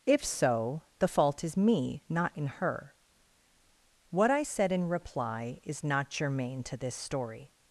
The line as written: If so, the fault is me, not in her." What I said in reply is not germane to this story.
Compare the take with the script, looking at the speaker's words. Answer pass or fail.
pass